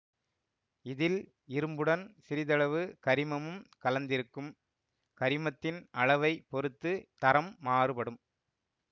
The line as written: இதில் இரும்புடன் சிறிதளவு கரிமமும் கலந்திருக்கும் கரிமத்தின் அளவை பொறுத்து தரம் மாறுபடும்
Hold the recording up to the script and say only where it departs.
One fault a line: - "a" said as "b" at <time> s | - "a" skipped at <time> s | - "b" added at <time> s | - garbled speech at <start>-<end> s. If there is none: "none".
none